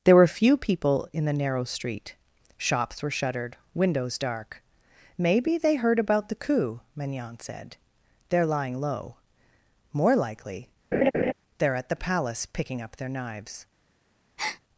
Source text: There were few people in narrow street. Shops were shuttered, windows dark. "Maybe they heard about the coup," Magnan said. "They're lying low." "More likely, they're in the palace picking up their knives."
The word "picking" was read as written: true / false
true